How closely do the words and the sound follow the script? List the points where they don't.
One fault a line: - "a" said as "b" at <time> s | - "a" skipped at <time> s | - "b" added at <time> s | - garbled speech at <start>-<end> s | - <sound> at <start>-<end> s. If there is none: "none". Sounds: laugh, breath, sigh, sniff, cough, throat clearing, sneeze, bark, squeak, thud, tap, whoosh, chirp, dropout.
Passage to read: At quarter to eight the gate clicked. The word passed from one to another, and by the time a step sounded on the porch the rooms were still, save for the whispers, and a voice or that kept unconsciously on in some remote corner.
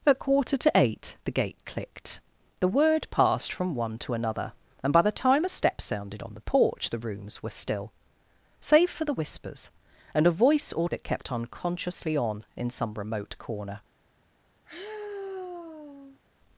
- sigh at 14.6-16.2 s